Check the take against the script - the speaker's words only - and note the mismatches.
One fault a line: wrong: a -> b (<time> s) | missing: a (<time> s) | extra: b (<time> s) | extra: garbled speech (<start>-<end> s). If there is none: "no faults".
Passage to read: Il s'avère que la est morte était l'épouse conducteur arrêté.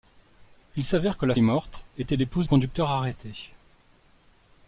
no faults